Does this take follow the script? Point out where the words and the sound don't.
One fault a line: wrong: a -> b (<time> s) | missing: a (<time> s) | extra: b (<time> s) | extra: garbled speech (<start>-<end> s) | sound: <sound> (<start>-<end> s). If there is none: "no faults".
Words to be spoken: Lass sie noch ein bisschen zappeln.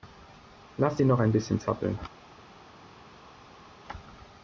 no faults